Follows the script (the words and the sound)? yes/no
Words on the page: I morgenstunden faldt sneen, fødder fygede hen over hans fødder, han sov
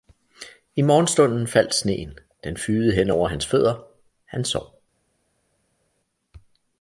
no